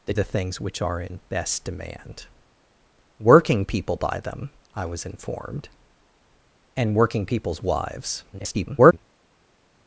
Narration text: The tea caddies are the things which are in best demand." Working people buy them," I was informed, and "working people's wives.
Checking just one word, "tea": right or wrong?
wrong